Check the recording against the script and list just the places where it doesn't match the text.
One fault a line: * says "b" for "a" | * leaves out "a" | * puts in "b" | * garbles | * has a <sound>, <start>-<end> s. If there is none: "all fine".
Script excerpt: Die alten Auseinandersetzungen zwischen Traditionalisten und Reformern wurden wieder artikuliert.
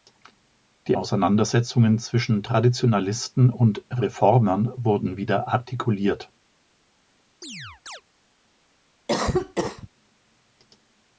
* leaves out "alten"
* has a chirp, 7.4-8.0 s
* has a cough, 9.1-9.9 s